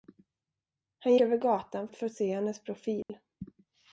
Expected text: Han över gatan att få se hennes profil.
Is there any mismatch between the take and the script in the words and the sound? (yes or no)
yes